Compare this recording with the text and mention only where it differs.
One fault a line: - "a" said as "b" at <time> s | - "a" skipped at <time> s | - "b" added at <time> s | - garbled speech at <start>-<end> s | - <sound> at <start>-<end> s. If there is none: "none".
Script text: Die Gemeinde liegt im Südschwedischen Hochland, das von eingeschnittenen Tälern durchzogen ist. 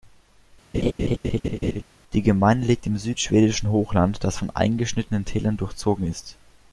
- laugh at 0.7-1.8 s